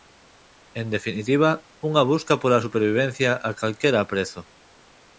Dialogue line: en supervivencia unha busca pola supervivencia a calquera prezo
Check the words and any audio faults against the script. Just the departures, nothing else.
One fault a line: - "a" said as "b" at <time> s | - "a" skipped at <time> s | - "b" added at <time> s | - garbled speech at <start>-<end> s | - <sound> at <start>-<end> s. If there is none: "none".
- "supervivencia" said as "definitiva" at 0.9 s